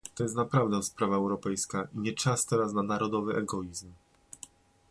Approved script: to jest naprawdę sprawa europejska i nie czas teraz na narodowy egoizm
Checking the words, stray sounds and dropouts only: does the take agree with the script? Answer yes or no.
yes